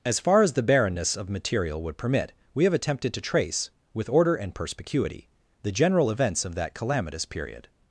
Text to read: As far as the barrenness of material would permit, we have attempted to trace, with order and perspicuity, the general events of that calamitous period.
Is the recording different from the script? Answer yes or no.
no